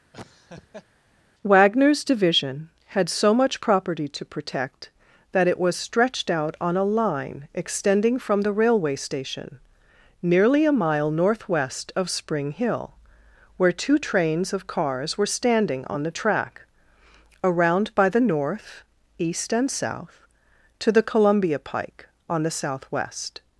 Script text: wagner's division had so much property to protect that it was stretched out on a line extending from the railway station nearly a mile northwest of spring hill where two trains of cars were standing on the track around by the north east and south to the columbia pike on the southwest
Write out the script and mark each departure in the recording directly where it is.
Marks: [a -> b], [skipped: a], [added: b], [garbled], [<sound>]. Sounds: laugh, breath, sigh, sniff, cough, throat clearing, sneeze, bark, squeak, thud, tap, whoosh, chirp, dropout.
[laugh] wagner's division had so much property to protect that it was stretched out on a line extending from the railway station nearly a mile northwest of spring hill where two trains of cars were standing on the track around by the north east and south to the columbia pike on the southwest